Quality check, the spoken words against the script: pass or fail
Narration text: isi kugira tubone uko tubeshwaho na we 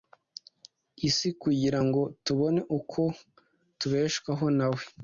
fail